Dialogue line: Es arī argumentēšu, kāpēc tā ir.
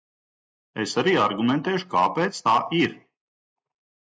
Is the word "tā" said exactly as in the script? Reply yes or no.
yes